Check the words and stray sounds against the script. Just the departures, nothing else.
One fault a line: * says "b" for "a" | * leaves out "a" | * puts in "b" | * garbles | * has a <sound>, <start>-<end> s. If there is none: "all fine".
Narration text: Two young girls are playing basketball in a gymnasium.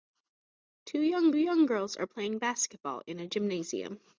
* puts in "young"